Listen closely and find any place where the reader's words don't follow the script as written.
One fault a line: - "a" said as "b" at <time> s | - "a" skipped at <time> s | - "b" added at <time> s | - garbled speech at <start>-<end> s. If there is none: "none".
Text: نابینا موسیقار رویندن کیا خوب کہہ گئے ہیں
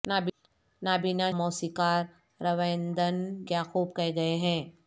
none